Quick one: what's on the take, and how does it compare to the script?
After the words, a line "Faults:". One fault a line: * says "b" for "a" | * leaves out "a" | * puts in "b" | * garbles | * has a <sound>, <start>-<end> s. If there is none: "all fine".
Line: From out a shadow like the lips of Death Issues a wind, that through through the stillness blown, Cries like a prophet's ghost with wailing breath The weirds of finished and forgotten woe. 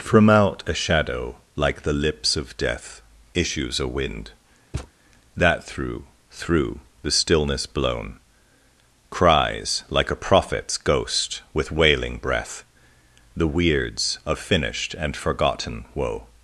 From out a shadow like the lips of Death Issues a wind, that through through the stillness blown, Cries like a prophet's ghost with wailing breath The weirds of finished and forgotten woe.
Faults:
* has a thud, 4.7-4.9 s